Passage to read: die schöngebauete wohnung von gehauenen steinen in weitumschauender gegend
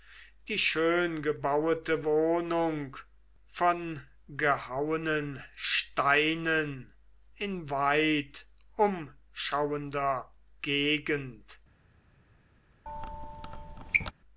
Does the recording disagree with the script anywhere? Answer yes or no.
no